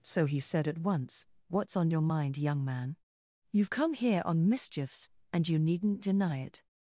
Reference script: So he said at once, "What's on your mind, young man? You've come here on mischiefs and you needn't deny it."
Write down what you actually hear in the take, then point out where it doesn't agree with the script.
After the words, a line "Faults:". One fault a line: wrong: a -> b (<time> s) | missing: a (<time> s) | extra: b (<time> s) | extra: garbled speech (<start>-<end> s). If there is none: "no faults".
So he said at once, "What's on your mind, young man? You've come here on mischiefs and you needn't deny it."
Faults:
no faults